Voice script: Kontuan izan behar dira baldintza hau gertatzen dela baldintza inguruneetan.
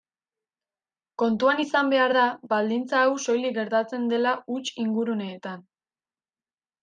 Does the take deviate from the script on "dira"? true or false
true